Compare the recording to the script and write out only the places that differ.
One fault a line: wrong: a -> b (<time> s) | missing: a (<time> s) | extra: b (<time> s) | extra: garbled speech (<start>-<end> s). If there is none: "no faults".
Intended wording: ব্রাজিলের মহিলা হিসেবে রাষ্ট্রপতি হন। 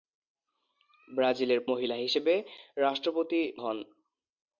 no faults